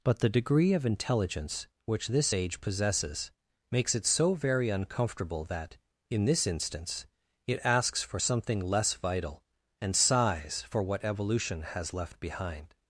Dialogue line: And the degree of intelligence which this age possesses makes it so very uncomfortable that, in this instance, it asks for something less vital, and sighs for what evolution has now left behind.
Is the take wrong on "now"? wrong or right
wrong